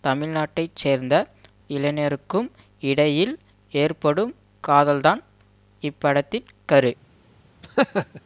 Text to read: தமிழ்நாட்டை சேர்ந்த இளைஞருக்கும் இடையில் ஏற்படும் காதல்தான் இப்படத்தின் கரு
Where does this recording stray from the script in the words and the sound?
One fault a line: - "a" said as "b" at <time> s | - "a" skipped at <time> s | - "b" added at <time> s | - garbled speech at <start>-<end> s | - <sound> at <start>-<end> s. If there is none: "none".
- laugh at 7.6-8.2 s